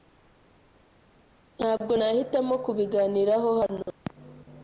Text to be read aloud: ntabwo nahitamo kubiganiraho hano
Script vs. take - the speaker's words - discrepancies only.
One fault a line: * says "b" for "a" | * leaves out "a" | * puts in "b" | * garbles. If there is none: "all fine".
all fine